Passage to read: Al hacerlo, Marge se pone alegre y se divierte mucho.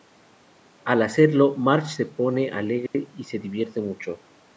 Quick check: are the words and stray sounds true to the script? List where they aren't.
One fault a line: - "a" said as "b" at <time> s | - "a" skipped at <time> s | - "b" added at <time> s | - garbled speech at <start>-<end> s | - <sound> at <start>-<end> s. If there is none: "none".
- dropout at 2.9-2.9 s